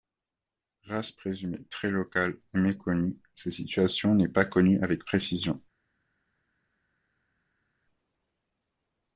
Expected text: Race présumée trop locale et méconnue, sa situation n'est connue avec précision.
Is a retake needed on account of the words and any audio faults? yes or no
yes